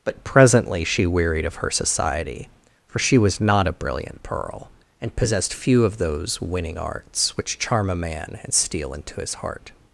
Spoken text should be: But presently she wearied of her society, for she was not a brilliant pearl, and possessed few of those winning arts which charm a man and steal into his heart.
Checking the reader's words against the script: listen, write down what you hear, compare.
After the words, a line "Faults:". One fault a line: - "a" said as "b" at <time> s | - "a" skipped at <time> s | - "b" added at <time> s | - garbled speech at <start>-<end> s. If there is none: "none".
But presently she wearied of her society, for she was not a brilliant pearl, and possessed few of those winning arts which charm a man and steal into his heart.
Faults:
none